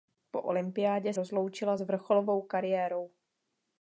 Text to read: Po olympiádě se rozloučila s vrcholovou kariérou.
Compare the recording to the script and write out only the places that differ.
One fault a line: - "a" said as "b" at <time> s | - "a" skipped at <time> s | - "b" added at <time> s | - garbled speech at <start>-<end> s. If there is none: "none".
- "se" skipped at 1.1 s